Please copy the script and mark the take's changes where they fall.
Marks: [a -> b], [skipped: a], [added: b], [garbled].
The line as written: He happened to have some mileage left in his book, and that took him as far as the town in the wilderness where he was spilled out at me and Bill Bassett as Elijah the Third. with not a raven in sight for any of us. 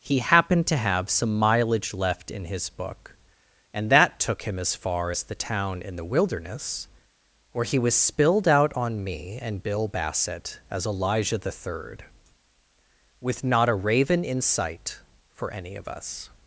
He happened to have some mileage left in his book, and that took him as far as the town in the wilderness where he was spilled out [at -> on] me and Bill Bassett as Elijah the Third. with not a raven in sight for any of us.